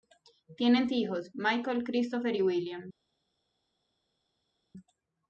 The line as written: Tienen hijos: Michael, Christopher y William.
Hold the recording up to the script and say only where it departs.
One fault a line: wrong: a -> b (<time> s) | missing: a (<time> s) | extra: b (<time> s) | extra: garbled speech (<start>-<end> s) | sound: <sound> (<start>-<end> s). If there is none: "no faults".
no faults